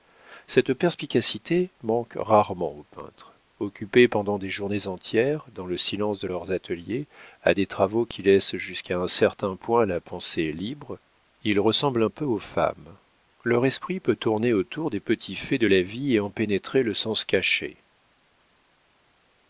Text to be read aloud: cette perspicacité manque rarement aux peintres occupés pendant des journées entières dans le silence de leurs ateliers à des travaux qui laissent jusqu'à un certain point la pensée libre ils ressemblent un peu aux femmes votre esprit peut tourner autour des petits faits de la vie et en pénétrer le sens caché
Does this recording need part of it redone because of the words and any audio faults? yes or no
yes